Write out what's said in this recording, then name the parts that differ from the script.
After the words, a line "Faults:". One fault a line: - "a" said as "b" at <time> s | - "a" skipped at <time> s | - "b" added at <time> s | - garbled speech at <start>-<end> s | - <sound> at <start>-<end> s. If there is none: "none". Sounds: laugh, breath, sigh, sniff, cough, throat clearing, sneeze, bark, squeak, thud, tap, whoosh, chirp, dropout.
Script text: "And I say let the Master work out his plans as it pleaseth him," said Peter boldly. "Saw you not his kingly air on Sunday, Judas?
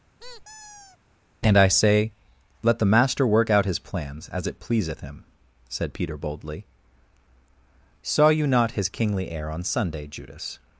"And I say let the Master work out his plans as it pleaseth him," said Peter boldly. "Saw you not his kingly air on Sunday, Judas?
Faults:
- squeak at 0.2-1.0 s